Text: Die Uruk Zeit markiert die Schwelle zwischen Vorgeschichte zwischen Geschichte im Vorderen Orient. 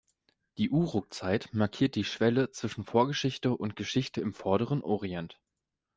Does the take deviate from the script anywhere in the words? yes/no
yes